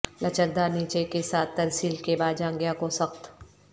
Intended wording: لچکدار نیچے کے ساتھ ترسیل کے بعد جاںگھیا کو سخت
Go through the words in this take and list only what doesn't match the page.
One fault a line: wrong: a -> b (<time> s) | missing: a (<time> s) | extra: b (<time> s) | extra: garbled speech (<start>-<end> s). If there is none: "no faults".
no faults